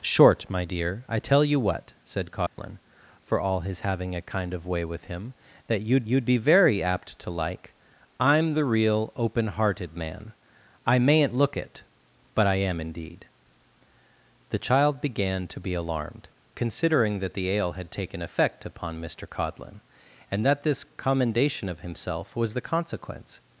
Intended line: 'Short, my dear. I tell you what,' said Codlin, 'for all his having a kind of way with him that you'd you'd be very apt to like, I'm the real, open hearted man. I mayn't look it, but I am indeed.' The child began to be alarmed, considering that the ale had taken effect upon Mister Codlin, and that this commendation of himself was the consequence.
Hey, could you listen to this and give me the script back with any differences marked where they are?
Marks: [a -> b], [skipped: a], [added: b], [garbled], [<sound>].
'Short, my dear. I tell you what,' said Codlin, [dropout] 'for all his having a kind of way with him that you'd you'd be very apt to like, I'm the real, open hearted man. I mayn't look it, but I am indeed.' The child began to be alarmed, considering that the ale had taken effect upon Mister Codlin, and that this commendation of himself was the consequence.